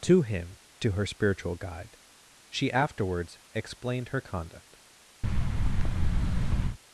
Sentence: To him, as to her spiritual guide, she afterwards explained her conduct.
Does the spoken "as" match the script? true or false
false